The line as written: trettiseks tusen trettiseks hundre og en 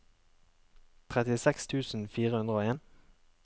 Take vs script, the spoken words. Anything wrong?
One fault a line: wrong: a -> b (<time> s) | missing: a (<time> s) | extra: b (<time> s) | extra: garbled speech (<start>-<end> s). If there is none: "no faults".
wrong: trettiseks -> fire (2.1 s)